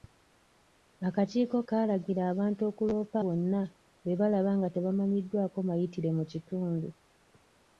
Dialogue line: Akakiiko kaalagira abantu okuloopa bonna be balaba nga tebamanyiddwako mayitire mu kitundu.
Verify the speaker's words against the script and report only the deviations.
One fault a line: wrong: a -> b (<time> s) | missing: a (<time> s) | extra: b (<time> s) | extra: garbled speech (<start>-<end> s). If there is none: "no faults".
no faults